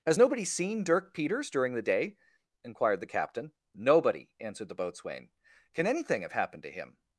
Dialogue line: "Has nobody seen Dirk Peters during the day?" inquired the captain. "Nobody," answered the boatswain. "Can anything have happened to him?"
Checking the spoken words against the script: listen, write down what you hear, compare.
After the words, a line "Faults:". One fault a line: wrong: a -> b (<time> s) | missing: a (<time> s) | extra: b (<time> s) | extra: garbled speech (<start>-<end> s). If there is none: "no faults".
"Has nobody seen Dirk Peters during the day?" inquired the captain. "Nobody," answered the boatswain. "Can anything have happened to him?"
Faults:
no faults